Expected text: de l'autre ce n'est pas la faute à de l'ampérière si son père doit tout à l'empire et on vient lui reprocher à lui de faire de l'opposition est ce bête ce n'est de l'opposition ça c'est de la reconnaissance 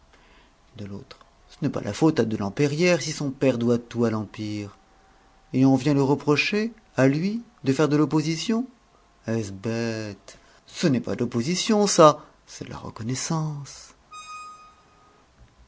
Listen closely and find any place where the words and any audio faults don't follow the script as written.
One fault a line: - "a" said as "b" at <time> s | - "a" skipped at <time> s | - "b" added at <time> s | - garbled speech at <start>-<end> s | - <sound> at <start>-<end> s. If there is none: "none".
- "pas" added at 11.0 s
- squeak at 14.1-15.2 s